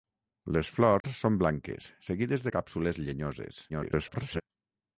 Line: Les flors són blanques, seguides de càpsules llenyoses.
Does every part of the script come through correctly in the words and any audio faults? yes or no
no